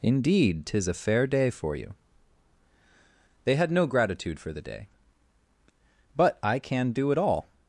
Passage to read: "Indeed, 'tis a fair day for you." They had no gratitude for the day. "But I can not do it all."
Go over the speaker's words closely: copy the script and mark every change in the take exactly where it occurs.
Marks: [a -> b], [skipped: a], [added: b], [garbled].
"Indeed, 'tis a fair day for you." They had no gratitude for the day. "But I can [skipped: not] do it all."